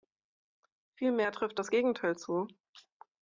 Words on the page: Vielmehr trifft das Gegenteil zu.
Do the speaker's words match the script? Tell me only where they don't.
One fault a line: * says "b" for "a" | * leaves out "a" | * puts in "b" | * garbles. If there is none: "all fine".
all fine